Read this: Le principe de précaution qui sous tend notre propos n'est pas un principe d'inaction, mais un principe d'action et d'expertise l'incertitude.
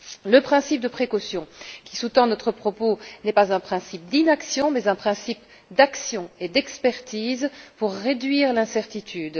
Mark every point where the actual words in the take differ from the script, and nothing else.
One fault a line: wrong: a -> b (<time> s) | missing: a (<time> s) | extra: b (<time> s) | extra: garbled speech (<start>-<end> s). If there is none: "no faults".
extra: pour réduire (7.8 s)